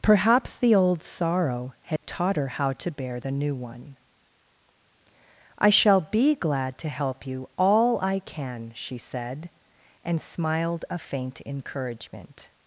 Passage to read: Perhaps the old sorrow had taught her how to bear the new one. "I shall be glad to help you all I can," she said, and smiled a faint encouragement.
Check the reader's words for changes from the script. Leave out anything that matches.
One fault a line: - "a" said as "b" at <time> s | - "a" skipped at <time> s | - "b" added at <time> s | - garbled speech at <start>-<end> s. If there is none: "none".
none